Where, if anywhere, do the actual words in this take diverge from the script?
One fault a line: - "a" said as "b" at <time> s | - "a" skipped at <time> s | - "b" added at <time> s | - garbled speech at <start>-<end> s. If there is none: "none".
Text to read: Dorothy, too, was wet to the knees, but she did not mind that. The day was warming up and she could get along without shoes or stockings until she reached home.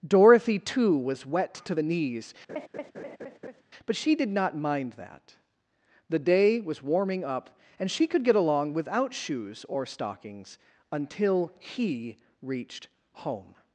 - "she" said as "he" at 11.6 s